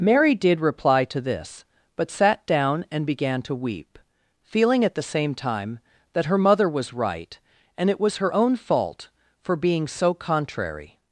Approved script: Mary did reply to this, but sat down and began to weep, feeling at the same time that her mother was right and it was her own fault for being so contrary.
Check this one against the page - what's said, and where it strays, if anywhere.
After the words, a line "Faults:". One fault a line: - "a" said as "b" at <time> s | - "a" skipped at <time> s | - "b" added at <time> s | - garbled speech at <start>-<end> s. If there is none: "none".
Mary did reply to this, but sat down and began to weep, feeling at the same time that her mother was right and it was her own fault for being so contrary.
Faults:
none